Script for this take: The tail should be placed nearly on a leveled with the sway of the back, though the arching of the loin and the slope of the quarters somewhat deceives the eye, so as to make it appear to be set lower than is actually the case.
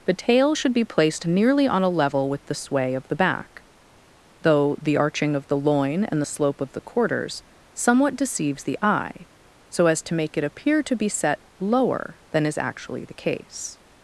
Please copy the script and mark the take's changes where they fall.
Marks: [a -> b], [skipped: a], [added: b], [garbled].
The tail should be placed nearly on a [leveled -> level] with the sway of the back, though the arching of the loin and the slope of the quarters somewhat deceives the eye, so as to make it appear to be set lower than is actually the case.